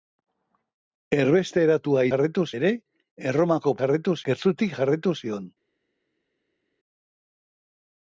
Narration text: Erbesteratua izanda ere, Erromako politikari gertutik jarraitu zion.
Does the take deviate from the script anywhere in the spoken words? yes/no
yes